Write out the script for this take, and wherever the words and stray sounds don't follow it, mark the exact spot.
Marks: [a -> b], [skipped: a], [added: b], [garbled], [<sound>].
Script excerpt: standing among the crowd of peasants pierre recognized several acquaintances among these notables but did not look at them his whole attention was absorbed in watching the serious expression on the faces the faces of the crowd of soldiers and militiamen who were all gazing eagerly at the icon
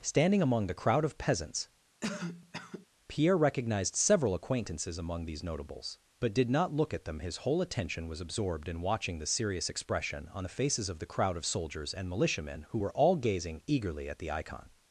standing among the crowd of peasants [cough] pierre recognized several acquaintances among these notables but did not look at them his whole attention was absorbed in watching the serious expression on the faces [skipped: the faces] of the crowd of soldiers and militiamen who were all gazing eagerly at the icon